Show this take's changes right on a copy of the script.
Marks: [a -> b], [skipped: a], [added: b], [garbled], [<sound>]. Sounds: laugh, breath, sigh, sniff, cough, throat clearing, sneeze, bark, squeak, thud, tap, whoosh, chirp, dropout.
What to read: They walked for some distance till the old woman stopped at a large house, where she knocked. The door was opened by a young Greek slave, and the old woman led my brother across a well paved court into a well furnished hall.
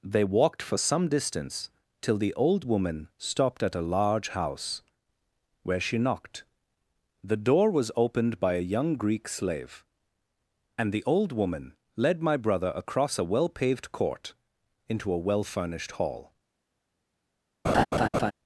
They walked for some distance till the old woman stopped at a large house, where she knocked. The door was opened by a young Greek slave, and the old woman led my brother across a well paved court into a well furnished hall. [laugh]